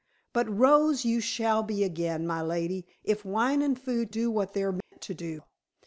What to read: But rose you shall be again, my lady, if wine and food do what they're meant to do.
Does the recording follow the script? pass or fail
pass